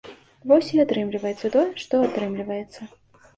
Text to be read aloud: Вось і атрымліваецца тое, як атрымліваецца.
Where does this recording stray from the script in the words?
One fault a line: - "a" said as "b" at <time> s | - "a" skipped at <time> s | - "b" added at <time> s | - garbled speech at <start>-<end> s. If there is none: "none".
- "як" said as "што" at 1.8 s